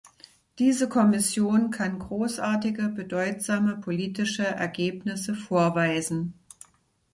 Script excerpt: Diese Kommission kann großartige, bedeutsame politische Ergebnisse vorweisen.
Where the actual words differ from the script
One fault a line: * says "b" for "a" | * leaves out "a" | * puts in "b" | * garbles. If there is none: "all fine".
all fine